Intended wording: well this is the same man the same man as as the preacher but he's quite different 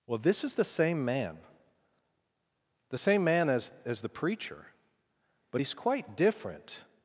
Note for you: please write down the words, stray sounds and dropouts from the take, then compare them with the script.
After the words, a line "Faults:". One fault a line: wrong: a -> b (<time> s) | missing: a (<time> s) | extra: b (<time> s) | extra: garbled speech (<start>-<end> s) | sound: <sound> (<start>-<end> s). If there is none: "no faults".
well this is the same man the same man as as the preacher but he's quite different
Faults:
no faults